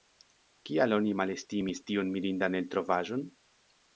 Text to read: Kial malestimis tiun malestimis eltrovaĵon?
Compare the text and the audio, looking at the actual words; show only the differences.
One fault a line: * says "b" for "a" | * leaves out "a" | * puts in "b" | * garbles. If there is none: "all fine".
* puts in "oni"
* says "mirindan" for "malestimis"